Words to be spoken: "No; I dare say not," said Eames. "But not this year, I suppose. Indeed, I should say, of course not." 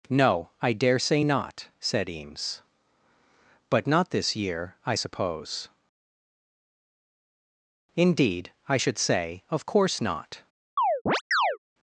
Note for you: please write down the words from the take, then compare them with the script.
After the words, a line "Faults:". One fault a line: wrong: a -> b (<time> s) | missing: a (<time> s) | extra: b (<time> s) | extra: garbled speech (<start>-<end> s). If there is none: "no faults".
"No; I dare say not," said Eames. "But not this year, I suppose. Indeed, I should say, of course not."
Faults:
no faults